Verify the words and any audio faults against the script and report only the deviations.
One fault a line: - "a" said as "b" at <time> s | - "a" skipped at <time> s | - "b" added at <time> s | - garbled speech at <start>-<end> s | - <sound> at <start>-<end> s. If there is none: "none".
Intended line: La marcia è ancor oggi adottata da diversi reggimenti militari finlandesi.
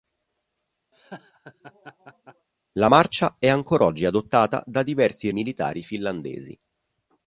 - laugh at 0.9-2.5 s
- "reggimenti" skipped at 5.3 s